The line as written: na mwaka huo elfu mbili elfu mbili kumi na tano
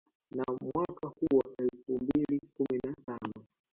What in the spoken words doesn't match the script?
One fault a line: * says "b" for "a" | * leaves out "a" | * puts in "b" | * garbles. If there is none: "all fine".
* leaves out "elfu mbili"